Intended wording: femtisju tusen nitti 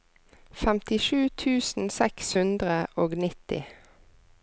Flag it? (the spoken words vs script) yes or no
yes